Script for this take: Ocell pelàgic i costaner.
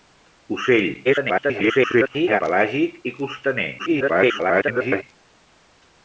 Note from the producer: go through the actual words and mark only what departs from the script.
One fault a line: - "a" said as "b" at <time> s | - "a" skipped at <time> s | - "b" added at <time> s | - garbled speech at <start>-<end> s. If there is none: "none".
- garbled speech at 1.0-2.4 s
- garbled speech at 3.8-5.0 s